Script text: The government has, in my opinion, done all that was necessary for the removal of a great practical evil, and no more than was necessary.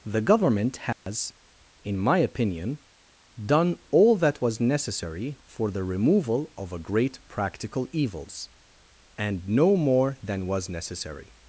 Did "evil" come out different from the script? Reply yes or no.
yes